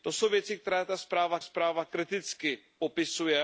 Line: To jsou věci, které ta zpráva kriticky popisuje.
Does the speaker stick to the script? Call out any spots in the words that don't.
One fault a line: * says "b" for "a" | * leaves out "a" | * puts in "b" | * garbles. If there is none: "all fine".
* puts in "zpráva"